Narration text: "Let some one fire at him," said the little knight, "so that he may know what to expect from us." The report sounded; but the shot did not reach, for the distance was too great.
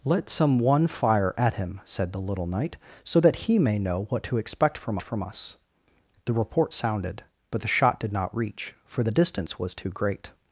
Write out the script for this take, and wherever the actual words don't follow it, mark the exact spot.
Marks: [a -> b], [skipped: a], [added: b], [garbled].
"Let some one fire at him," said the little knight, "so that he may know what to expect from [added: from] us." The report sounded; but the shot did not reach, for the distance was too great.